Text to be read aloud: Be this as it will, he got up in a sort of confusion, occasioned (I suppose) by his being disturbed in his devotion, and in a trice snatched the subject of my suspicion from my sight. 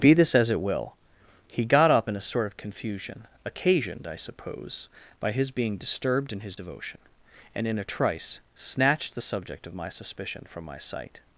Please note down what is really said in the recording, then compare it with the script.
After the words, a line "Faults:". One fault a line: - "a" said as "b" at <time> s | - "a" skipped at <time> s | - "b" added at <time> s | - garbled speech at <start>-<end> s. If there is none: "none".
Be this as it will, he got up in a sort of confusion, occasioned (I suppose) by his being disturbed in his devotion, and in a trice snatched the subject of my suspicion from my sight.
Faults:
none